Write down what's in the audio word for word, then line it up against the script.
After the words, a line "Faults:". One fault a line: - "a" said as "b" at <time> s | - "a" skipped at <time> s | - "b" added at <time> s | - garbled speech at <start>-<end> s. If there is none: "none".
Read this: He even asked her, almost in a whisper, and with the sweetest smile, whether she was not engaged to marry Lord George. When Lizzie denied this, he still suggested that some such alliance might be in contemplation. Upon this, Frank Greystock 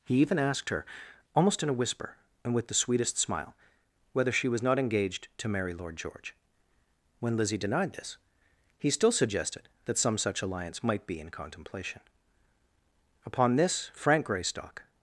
He even asked her, almost in a whisper, and with the sweetest smile, whether she was not engaged to marry Lord George. When Lizzie denied this, he still suggested that some such alliance might be in contemplation. Upon this, Frank Greystock
Faults:
none